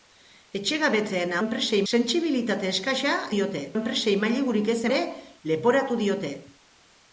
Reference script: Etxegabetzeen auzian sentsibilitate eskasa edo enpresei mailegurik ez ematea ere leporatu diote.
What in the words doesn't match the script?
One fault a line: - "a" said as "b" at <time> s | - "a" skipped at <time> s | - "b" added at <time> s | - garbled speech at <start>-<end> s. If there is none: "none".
- "auzian" said as "enpresei" at 1.4 s
- "edo" said as "diote" at 3.4 s
- "ematea" skipped at 4.8 s